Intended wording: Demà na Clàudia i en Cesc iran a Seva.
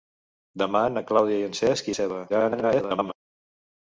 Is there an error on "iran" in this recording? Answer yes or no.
yes